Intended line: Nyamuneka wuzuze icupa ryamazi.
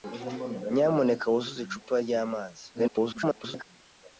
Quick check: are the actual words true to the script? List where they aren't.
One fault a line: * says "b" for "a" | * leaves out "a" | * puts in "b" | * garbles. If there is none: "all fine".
* garbles